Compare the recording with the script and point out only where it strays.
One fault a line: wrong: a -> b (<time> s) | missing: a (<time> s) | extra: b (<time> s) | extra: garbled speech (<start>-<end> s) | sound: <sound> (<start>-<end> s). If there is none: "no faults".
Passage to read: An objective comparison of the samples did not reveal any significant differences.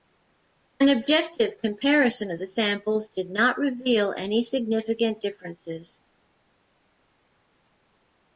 no faults